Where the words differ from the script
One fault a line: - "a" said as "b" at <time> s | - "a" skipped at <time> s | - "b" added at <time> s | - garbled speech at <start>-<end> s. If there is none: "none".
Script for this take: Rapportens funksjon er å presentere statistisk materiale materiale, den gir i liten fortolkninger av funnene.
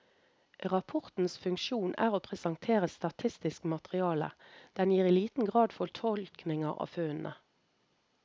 - "materiale" skipped at 4.3 s
- "grad" added at 5.5 s